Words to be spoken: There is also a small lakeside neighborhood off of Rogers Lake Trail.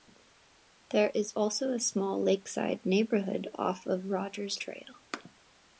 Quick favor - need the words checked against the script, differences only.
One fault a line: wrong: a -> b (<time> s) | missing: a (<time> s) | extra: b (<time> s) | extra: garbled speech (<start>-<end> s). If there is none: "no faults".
missing: Lake (4.6 s)